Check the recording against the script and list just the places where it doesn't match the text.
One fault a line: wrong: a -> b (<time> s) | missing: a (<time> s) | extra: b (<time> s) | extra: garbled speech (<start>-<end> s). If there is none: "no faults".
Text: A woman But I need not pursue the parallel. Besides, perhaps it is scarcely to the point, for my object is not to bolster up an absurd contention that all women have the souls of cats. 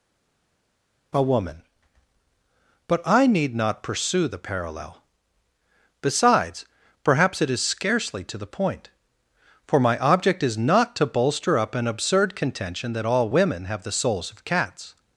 no faults